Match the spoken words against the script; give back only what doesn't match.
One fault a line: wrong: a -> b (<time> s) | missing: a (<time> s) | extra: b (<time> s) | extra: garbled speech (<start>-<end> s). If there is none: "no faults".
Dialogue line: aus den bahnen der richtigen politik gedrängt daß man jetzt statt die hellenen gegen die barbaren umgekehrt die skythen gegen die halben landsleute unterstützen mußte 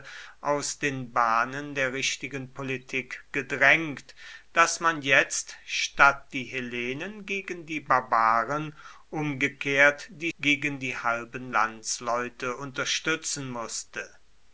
missing: skythen (10.3 s)